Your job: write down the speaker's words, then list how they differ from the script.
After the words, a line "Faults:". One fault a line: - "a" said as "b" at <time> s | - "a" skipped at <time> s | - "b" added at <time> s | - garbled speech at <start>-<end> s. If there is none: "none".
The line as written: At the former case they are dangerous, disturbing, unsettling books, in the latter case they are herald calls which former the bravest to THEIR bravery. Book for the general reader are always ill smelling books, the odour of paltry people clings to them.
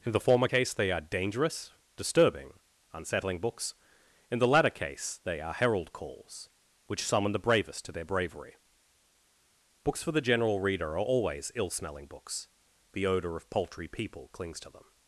In the former case they are dangerous, disturbing, unsettling books, in the latter case they are herald calls which summon the bravest to THEIR bravery. Books for the general reader are always ill smelling books, the odour of paltry people clings to them.
Faults:
- "At" said as "In" at 0.0 s
- "former" said as "summon" at 7.0 s
- "Book" said as "Books" at 9.8 s